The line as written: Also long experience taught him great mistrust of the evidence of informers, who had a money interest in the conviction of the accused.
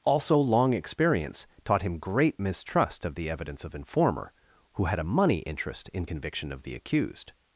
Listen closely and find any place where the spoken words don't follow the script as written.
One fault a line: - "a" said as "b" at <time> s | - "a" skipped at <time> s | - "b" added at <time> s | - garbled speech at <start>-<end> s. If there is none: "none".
- "informers" said as "informer" at 3.8 s
- "the" skipped at 6.0 s